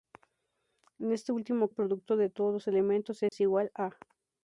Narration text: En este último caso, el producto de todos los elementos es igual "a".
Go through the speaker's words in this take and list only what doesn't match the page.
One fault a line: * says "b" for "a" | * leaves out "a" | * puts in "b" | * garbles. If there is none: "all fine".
* leaves out "caso"